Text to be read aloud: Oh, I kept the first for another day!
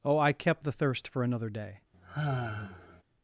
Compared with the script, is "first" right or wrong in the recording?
wrong